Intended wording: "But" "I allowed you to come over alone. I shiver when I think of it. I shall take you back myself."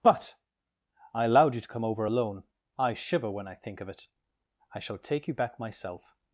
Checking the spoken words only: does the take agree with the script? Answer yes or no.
yes